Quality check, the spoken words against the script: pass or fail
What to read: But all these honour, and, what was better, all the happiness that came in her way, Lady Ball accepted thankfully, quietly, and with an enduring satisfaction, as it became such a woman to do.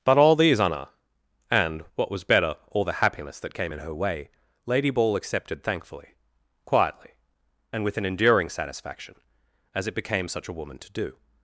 pass